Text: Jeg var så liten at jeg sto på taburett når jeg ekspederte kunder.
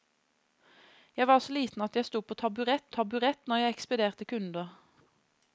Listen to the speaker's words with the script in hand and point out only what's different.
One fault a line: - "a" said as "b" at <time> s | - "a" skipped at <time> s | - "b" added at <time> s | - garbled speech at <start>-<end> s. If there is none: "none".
- "taburett" added at 3.0 s